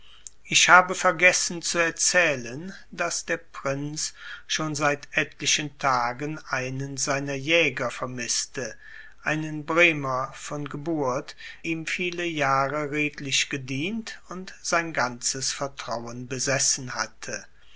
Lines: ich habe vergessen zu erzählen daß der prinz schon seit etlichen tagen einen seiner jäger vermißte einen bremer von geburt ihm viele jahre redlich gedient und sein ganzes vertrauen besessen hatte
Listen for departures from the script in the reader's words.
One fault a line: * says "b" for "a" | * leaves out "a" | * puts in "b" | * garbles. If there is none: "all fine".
all fine